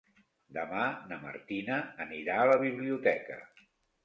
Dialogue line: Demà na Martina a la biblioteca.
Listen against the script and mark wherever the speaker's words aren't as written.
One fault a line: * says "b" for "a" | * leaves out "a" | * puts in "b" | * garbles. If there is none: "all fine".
* puts in "anirà"